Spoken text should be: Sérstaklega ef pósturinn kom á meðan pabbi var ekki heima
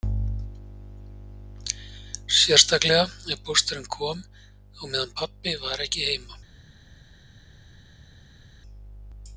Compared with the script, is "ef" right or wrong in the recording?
right